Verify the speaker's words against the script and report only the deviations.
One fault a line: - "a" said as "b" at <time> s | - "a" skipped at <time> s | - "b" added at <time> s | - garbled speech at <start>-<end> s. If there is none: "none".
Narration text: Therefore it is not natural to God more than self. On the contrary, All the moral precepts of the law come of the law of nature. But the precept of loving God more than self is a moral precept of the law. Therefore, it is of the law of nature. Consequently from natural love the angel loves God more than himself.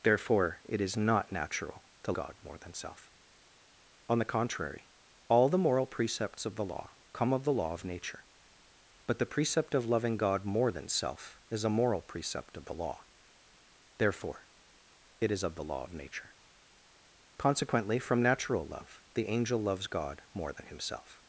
none